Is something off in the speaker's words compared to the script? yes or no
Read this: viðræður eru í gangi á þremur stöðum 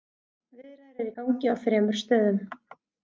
no